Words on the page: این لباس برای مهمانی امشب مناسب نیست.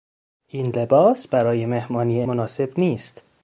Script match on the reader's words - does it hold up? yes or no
no